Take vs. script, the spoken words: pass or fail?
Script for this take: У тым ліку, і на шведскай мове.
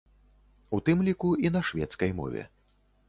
pass